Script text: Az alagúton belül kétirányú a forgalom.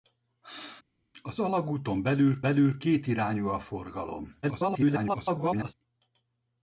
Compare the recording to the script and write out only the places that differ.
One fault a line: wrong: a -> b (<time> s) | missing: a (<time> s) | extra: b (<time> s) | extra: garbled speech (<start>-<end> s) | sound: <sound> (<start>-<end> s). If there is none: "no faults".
extra: belül (2.4 s)
extra: garbled speech (4.4-5.7 s)